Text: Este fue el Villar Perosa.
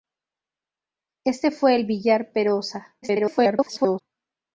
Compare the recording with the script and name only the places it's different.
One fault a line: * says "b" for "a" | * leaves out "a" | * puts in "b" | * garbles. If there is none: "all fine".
* garbles